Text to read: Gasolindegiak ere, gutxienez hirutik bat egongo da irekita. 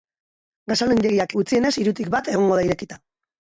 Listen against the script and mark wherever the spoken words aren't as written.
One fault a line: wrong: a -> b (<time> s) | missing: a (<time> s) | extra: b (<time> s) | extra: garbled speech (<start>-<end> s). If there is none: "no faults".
missing: ere (1.4 s)